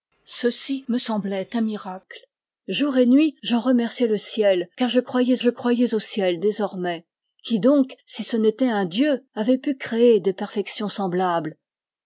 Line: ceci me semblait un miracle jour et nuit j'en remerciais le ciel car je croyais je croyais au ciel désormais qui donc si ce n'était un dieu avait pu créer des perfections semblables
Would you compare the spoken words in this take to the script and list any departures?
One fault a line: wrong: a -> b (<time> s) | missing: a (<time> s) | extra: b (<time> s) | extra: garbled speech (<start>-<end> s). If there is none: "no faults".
no faults